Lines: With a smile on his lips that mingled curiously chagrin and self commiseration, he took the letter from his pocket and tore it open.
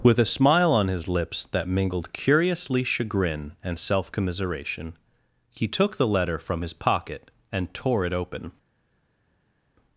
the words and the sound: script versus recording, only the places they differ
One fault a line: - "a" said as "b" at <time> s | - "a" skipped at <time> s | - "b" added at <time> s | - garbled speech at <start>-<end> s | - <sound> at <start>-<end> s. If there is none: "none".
none